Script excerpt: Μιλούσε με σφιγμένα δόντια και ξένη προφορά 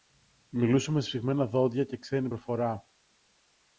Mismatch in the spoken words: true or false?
false